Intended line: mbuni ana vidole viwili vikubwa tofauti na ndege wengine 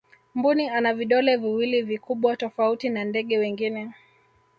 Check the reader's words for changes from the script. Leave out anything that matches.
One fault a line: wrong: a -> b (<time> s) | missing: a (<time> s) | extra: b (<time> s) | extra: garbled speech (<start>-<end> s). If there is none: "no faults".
no faults